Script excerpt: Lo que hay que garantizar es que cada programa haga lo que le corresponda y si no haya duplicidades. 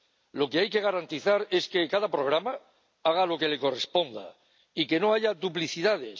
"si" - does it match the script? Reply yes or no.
no